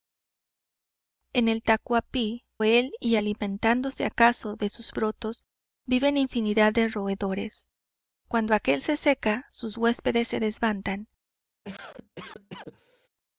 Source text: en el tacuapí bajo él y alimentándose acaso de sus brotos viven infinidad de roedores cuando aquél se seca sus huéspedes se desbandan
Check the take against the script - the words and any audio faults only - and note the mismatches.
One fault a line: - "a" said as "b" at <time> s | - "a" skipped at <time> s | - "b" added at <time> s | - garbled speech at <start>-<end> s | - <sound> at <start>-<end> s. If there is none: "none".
- "bajo" skipped at 2.4 s
- cough at 11.6-13.1 s